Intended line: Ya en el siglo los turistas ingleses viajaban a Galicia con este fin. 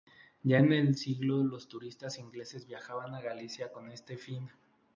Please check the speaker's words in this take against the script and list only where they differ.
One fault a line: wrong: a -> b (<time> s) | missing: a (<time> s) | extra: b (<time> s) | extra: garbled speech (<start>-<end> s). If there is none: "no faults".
no faults